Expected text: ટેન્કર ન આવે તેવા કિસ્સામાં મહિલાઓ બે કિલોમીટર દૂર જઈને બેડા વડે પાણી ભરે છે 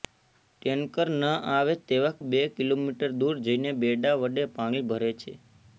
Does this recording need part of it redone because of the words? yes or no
yes